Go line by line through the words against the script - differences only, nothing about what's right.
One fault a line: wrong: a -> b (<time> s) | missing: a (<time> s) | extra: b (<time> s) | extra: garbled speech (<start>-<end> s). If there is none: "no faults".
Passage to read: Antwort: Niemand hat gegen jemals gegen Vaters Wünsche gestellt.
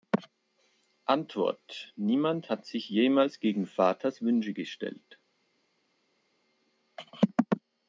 wrong: gegen -> sich (2.7 s)